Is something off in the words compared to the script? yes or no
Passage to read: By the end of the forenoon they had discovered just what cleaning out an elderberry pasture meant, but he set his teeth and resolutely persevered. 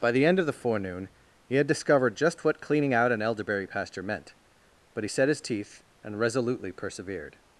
yes